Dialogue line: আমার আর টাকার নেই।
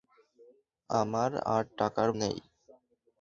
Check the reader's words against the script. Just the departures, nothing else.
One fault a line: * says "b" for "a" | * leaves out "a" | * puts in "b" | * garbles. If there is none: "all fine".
all fine